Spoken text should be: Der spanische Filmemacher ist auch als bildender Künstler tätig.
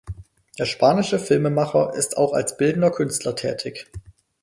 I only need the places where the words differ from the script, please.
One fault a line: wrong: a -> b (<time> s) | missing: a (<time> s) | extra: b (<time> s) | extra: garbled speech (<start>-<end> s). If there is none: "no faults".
no faults